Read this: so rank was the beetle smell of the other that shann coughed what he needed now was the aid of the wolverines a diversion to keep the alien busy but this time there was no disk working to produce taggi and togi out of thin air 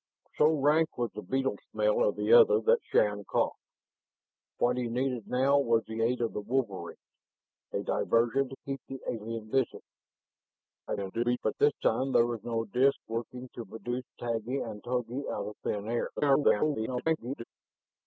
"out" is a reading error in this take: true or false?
false